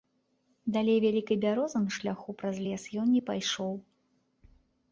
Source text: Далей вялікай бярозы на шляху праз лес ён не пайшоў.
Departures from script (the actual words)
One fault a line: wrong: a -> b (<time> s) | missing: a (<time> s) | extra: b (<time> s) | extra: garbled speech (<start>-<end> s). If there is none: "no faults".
no faults